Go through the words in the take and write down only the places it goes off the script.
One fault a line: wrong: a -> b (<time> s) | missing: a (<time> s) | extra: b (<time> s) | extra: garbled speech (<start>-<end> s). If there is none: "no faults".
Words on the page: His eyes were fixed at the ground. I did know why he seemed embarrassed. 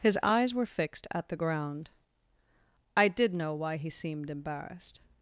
no faults